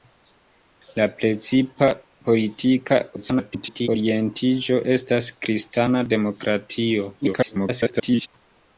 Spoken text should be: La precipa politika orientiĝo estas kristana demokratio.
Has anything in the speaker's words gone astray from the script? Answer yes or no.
yes